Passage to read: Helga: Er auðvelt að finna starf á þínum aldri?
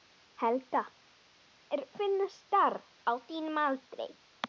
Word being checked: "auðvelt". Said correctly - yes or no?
no